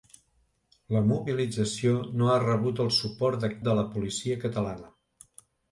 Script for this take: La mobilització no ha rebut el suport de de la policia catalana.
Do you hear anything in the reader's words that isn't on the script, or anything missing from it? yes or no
no